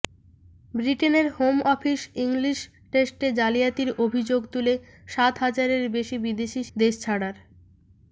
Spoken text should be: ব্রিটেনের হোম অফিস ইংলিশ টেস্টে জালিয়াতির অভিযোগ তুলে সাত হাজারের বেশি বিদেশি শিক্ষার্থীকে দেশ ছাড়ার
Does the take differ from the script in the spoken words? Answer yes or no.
yes